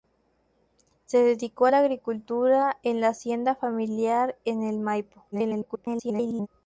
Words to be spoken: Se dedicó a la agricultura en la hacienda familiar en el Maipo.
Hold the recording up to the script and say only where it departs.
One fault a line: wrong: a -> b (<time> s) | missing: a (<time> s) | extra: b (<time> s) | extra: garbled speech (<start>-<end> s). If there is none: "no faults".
extra: garbled speech (5.3-6.5 s)